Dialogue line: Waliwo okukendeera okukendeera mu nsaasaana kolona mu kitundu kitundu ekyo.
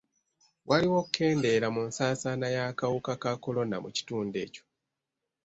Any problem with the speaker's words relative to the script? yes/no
yes